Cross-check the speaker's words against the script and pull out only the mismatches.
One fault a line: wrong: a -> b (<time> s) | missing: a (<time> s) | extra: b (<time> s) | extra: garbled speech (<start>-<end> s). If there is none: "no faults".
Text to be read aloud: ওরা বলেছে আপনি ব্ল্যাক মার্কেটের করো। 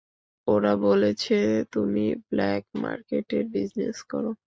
wrong: আপনি -> তুমি (1.7 s)
extra: বিজনেস (3.5 s)